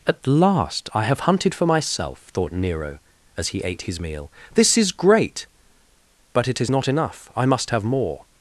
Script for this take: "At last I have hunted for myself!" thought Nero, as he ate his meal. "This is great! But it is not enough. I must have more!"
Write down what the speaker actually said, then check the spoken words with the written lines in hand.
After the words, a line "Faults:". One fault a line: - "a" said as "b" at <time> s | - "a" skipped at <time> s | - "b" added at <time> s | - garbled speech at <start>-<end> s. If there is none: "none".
"At last I have hunted for myself!" thought Nero, as he ate his meal. "This is great! But it is not enough. I must have more!"
Faults:
none